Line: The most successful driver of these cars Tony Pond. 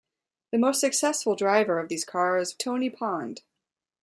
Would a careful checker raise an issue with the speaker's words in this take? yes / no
no